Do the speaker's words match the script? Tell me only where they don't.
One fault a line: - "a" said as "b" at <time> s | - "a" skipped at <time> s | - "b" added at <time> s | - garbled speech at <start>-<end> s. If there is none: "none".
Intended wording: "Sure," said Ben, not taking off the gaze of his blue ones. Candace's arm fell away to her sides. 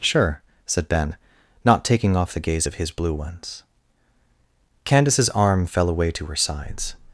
none